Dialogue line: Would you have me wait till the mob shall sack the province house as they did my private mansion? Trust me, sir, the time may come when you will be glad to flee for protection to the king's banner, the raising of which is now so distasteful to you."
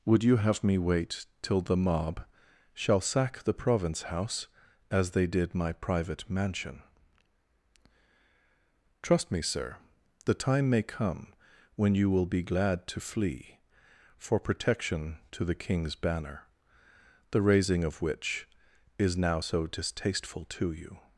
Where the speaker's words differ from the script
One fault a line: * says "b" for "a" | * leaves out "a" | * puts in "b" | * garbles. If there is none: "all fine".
all fine